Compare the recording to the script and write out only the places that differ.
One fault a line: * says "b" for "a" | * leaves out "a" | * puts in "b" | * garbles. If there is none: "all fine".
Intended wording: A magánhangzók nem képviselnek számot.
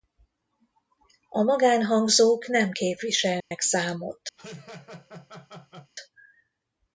all fine